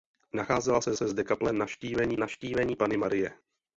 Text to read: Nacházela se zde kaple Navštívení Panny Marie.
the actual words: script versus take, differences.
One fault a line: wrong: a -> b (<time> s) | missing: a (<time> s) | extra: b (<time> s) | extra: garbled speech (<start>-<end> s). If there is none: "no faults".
extra: se (1.0 s)
extra: Navštívení (2.1 s)